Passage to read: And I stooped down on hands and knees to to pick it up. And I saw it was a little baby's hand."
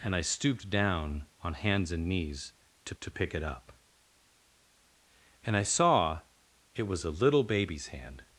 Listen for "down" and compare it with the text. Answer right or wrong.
right